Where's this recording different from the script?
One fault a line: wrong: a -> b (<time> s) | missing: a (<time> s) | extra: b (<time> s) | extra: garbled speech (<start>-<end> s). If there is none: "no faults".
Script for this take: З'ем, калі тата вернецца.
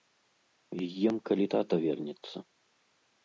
no faults